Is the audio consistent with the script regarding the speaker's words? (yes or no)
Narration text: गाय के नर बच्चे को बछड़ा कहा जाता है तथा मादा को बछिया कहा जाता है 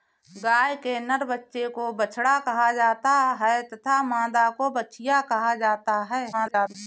no